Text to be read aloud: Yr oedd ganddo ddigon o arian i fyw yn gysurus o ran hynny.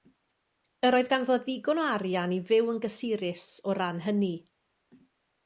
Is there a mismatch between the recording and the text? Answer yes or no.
no